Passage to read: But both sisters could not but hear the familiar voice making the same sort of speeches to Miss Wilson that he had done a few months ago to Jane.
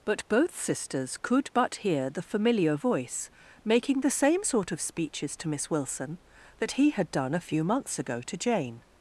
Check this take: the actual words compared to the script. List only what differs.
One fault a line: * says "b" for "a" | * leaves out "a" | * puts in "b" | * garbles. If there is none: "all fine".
* leaves out "not"